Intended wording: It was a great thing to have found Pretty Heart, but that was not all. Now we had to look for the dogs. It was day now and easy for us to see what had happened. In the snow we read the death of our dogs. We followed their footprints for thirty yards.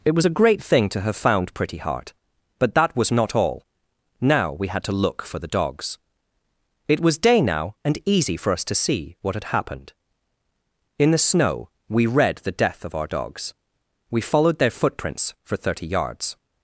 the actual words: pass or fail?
pass